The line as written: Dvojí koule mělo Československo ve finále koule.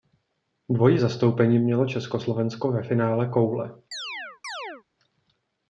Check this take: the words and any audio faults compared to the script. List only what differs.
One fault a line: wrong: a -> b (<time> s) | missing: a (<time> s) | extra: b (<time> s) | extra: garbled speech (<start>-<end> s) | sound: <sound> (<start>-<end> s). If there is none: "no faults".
wrong: koule -> zastoupení (0.9 s)
sound: chirp (3.9-4.8 s)